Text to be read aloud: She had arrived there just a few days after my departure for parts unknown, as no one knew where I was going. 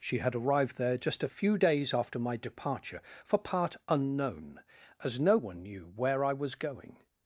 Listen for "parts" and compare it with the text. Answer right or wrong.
wrong